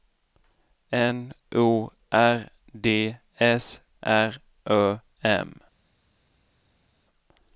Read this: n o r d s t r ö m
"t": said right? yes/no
no